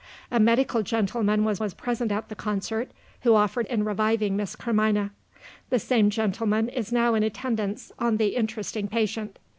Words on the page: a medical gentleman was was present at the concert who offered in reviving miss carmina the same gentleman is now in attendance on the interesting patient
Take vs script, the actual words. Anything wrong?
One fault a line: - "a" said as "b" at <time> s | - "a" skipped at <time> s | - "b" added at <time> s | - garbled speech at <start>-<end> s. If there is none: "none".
none